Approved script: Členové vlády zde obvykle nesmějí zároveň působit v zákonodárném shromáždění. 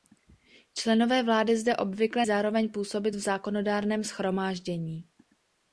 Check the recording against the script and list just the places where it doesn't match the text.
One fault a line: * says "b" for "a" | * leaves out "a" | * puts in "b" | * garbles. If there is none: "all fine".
* leaves out "nesmějí"